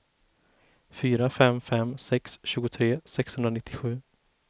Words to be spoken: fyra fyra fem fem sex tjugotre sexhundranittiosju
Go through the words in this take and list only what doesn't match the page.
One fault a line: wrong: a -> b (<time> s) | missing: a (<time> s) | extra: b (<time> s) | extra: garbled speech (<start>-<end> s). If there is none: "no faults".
missing: fyra (1.3 s)